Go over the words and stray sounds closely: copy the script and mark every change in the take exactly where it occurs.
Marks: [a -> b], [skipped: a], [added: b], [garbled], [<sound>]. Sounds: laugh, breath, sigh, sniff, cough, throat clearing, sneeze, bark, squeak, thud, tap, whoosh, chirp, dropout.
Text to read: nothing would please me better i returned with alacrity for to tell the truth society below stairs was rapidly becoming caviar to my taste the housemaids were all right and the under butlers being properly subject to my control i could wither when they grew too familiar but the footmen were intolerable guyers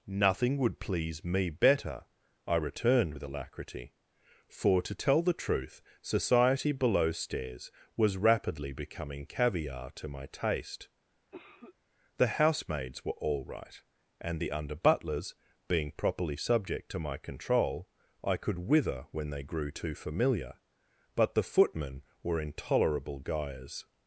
nothing would please me better i returned with alacrity for to tell the truth society below stairs was rapidly becoming caviar to my taste [cough] the housemaids were all right and the under butlers being properly subject to my control i could wither when they grew too familiar but the footmen were intolerable guyers